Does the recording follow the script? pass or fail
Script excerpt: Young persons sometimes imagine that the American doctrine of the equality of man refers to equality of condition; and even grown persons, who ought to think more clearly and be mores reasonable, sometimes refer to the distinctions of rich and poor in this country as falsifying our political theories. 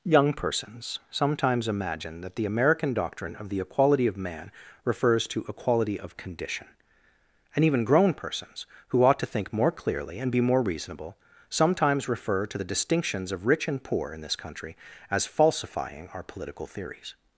fail